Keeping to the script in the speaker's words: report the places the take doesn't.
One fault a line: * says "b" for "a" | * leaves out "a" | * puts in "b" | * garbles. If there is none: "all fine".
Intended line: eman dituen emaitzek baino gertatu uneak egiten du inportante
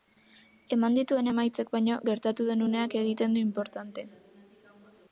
* puts in "den"